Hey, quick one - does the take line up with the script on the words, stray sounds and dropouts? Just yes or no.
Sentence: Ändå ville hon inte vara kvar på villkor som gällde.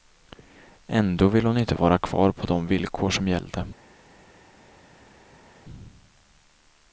no